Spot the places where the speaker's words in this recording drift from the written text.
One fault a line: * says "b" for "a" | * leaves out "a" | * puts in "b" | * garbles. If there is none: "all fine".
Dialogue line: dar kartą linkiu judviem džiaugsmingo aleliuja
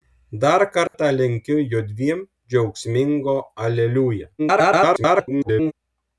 * garbles